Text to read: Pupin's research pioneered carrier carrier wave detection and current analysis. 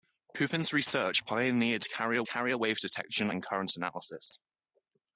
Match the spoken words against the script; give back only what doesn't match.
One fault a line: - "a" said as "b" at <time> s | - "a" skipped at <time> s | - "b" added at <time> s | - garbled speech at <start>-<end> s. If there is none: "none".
none